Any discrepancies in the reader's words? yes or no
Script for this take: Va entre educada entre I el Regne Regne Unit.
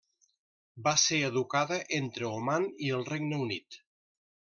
yes